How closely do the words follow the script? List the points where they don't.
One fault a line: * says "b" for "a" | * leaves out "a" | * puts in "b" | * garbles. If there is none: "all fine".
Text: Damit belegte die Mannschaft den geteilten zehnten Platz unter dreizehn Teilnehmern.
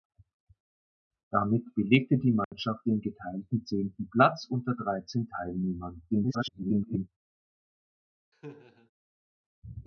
* garbles